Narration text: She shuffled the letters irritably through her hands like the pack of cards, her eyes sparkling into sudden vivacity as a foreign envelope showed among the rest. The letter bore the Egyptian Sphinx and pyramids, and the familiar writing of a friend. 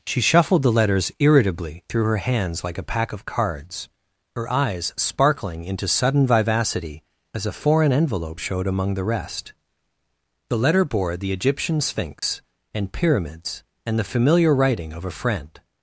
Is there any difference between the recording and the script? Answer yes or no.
yes